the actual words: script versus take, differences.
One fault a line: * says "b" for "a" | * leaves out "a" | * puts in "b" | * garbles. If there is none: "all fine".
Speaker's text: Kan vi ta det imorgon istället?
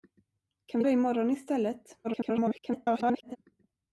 * leaves out "ta"
* garbles